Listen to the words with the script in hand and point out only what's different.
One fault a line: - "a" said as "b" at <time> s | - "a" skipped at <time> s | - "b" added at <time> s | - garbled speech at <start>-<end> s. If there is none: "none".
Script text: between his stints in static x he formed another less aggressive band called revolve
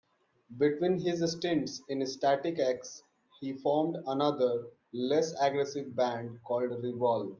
none